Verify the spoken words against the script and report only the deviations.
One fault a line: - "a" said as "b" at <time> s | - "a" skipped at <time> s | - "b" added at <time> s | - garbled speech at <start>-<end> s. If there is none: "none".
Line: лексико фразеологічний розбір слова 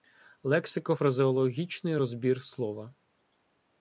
none